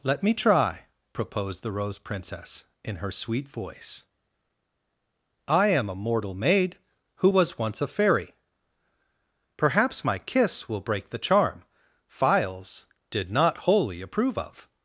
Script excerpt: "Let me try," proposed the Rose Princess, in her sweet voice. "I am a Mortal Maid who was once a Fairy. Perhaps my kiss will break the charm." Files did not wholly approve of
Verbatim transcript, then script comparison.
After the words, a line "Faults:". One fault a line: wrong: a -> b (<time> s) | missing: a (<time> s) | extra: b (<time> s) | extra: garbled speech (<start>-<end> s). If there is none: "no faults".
"Let me try," proposed the Rose Princess, in her sweet voice. "I am a Mortal Maid who was once a Fairy. Perhaps my kiss will break the charm." Files did not wholly approve of
Faults:
no faults